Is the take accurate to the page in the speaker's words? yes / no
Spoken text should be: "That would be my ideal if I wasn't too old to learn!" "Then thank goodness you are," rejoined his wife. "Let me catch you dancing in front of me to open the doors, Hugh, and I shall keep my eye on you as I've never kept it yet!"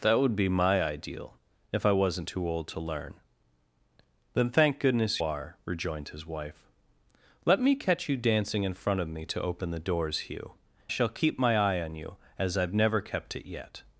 no